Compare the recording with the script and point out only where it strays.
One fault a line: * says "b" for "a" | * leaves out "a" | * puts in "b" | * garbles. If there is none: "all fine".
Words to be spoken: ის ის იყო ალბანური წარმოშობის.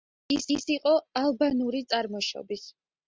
all fine